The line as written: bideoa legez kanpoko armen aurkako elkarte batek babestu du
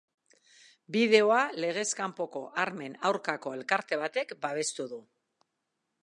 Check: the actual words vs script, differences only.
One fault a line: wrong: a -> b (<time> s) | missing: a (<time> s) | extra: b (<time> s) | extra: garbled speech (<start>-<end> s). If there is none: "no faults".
no faults